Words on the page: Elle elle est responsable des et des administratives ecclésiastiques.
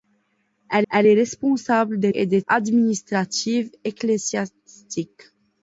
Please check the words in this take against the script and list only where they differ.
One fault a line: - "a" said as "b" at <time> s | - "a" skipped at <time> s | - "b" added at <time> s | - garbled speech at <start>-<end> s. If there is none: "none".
none